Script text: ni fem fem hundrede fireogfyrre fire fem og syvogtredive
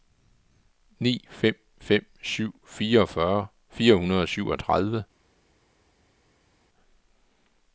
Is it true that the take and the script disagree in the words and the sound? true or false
true